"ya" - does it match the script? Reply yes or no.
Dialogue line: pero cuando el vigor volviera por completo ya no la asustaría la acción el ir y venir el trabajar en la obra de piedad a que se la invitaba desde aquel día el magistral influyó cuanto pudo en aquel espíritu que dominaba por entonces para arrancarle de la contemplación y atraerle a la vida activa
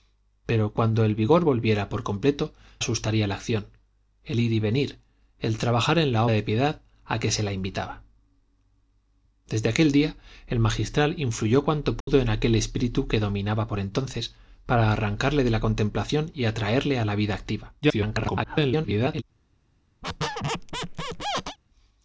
no